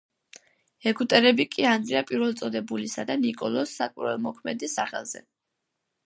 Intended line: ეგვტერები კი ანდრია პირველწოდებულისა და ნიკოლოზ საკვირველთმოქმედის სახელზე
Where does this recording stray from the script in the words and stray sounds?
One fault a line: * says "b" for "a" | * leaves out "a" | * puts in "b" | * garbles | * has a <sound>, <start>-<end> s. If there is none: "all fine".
all fine